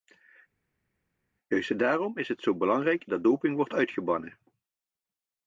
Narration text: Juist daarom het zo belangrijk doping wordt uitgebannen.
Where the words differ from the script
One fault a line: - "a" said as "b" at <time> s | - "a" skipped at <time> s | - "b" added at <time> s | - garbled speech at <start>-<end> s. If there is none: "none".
- "is" added at 2.2 s
- "dat" added at 3.1 s